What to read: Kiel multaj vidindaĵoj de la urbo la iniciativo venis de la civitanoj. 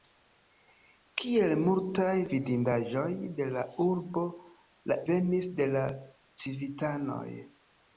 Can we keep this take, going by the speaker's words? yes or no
no